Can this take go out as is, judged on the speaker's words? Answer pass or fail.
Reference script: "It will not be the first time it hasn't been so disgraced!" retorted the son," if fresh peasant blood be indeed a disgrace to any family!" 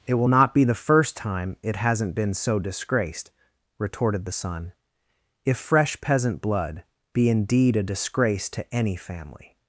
pass